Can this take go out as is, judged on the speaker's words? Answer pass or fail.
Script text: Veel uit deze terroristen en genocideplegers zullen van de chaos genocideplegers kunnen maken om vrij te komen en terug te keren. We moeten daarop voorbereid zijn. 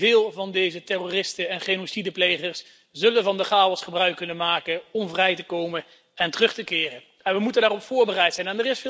fail